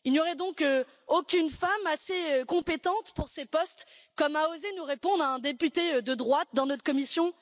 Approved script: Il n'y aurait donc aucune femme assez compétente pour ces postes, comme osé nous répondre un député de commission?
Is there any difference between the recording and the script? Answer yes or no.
yes